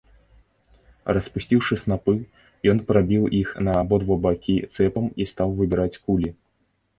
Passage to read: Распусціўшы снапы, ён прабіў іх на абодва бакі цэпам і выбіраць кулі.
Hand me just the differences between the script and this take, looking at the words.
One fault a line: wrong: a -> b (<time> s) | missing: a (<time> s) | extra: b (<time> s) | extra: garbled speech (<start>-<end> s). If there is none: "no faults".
extra: стаў (5.3 s)